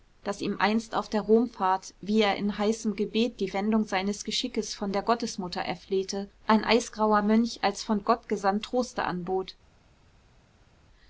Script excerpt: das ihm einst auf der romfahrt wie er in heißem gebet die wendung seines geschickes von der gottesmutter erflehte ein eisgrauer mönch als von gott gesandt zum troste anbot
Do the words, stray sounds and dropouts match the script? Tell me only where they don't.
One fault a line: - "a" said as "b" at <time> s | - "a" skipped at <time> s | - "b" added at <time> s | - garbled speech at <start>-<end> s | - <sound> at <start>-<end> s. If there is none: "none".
- "zum" skipped at 8.6 s